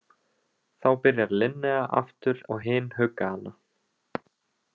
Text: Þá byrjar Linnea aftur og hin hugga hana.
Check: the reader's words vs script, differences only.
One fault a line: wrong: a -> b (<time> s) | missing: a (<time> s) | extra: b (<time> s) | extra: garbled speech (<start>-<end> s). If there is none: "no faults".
no faults